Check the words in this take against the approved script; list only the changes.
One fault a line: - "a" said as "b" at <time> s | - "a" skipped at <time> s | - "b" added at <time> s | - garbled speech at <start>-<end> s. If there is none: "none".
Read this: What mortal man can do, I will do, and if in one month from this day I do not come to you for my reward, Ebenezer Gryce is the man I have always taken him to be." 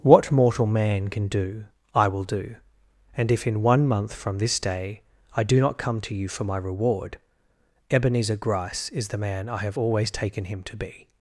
none